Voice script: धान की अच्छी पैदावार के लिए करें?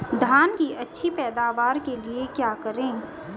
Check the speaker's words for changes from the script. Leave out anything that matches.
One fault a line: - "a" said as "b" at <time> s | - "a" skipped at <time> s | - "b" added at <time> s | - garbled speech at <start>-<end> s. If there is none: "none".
- "क्या" added at 2.3 s